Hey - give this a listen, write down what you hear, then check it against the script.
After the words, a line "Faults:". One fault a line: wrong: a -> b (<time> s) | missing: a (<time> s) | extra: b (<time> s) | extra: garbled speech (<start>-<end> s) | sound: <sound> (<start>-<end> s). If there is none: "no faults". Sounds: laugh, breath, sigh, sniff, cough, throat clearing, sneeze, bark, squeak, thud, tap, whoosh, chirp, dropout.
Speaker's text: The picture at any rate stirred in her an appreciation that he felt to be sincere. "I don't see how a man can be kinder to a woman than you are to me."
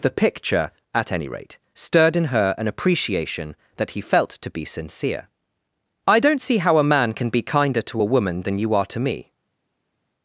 The picture at any rate stirred in her an appreciation that he felt to be sincere. "I don't see how a man can be kinder to a woman than you are to me."
Faults:
no faults